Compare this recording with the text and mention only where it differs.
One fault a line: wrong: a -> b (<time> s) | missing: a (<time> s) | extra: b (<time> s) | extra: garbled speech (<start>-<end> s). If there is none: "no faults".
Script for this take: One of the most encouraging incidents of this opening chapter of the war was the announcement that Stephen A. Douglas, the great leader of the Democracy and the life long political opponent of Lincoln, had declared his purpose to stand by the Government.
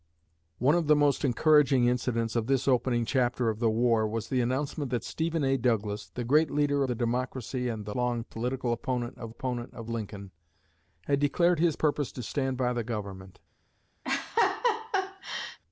missing: of (6.8 s)
missing: life (7.9 s)
extra: opponent of (9.3 s)